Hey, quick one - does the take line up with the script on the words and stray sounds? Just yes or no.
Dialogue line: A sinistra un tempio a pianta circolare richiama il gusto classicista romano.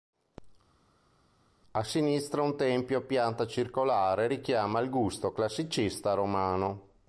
yes